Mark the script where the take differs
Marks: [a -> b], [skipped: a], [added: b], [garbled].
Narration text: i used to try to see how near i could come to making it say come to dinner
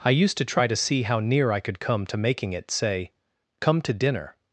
i used to try to see how near i could come to making it say come to dinner